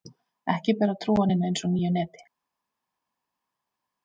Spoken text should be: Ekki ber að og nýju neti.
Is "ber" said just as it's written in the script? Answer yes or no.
yes